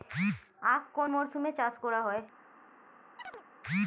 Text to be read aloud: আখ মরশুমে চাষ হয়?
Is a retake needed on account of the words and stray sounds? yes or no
yes